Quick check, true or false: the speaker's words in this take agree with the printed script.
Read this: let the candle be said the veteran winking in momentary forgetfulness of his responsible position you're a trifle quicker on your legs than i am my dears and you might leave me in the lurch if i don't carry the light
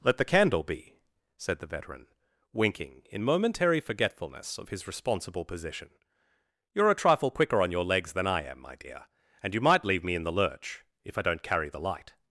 false